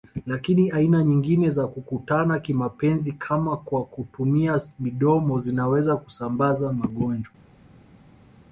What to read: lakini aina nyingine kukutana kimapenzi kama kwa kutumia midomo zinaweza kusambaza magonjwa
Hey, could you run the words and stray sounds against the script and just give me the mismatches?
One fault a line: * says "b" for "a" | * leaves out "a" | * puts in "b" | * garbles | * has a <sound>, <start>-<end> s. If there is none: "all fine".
* puts in "za"